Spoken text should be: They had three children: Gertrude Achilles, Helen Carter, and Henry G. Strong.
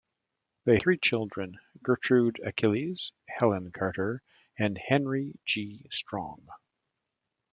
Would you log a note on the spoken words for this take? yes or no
yes